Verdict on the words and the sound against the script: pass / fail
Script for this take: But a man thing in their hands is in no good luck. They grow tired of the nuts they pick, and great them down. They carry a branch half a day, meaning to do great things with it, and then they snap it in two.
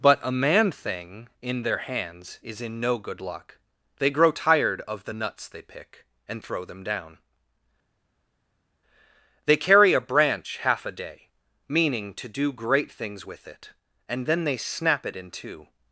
fail